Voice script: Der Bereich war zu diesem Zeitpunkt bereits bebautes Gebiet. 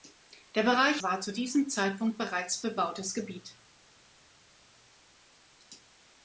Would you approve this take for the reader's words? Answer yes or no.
yes